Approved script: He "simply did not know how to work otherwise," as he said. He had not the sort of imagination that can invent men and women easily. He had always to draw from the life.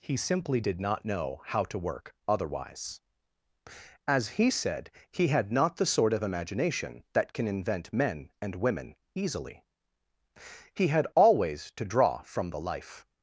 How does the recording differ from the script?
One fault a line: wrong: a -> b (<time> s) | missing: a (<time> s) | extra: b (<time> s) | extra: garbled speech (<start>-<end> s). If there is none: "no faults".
no faults